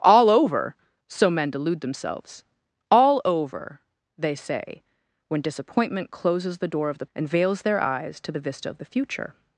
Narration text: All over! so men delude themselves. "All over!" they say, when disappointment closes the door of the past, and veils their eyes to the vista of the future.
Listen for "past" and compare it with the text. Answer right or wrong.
wrong